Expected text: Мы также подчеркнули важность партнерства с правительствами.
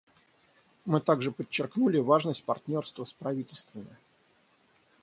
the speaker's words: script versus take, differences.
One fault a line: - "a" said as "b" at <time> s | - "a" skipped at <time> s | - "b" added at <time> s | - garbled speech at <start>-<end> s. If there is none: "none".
none